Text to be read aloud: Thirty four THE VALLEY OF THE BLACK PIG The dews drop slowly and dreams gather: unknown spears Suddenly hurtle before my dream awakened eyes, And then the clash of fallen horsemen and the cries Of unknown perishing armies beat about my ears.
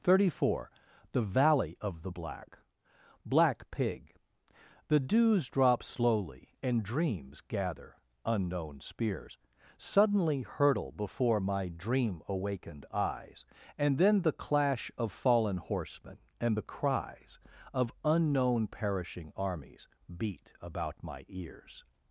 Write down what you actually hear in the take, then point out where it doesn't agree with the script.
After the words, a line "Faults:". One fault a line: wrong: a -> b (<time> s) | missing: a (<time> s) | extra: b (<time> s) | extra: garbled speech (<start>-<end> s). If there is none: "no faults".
Thirty four THE VALLEY OF THE BLACK BLACK PIG The dews drop slowly and dreams gather: unknown spears Suddenly hurtle before my dream awakened eyes, And then the clash of fallen horsemen and the cries Of unknown perishing armies beat about my ears.
Faults:
extra: BLACK (3.2 s)